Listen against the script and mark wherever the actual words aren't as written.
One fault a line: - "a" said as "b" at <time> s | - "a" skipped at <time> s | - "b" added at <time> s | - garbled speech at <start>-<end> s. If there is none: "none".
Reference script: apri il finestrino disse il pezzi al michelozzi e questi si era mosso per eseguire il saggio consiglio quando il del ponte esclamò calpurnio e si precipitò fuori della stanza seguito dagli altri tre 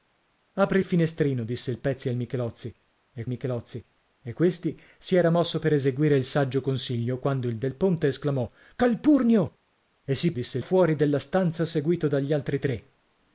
- "michelozzi e" added at 3.3 s
- "precipitò" said as "disse" at 10.3 s